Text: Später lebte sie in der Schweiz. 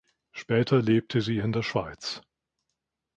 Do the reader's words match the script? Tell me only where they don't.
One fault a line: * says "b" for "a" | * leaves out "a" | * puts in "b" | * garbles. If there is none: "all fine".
all fine